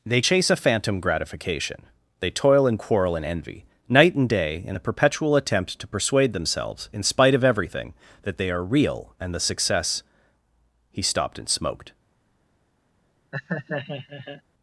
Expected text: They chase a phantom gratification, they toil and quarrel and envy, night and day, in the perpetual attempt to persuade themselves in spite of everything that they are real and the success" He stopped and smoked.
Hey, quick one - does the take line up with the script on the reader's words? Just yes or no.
yes